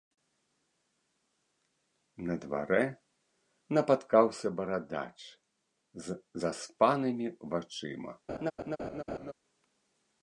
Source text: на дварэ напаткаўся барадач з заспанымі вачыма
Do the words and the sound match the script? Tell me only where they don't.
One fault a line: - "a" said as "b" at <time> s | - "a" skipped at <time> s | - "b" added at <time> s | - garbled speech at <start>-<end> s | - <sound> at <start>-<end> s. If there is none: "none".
- laugh at 8.3-9.3 s